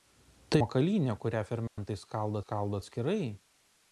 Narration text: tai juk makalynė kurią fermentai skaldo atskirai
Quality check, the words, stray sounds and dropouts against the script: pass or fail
fail